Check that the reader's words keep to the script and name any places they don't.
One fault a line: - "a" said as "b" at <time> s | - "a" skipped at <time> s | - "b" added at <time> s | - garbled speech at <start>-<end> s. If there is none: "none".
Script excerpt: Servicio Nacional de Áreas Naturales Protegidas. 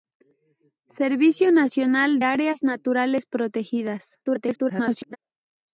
- "de" skipped at 2.2 s
- garbled speech at 4.2-5.2 s